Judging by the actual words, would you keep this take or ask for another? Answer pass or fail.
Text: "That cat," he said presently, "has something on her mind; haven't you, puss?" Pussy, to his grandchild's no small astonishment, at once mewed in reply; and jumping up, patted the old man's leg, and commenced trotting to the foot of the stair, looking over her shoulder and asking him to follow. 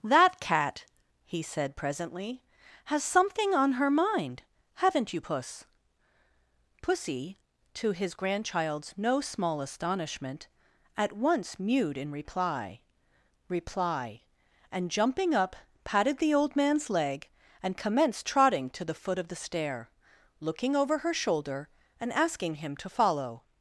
fail